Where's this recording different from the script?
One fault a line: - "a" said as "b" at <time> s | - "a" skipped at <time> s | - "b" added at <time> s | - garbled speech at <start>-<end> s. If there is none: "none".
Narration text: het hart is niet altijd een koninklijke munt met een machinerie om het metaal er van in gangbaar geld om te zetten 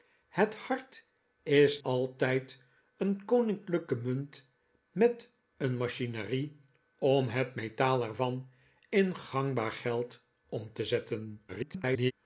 - "niet" skipped at 1.8 s
- garbled speech at 11.5-12.1 s